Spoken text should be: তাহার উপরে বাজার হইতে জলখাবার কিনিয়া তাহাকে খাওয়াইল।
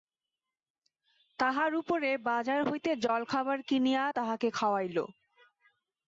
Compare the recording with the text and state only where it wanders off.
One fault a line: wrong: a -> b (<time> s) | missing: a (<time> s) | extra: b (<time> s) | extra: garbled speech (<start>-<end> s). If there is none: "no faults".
no faults